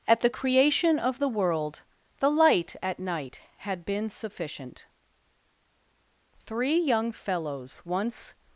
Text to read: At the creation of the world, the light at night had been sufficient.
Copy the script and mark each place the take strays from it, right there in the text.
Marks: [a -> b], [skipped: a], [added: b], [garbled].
At the creation of the world, the light at night had been sufficient. [added: Three young fellows once]